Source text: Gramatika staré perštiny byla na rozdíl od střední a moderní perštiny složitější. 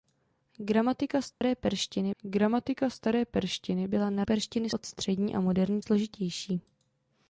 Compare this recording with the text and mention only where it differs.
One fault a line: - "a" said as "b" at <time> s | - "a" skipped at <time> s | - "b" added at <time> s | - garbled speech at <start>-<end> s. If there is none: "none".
- "gramatika staré perštiny" added at 2.2 s
- "rozdíl" said as "perštiny" at 4.2 s
- "perštiny" skipped at 5.8 s